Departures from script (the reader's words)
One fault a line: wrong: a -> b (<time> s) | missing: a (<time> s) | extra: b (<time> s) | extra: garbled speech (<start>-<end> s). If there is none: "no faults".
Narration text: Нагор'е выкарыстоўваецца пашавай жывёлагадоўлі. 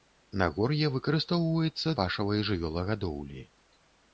no faults